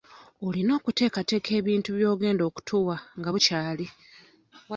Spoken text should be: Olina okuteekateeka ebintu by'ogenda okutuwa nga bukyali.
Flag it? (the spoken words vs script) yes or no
no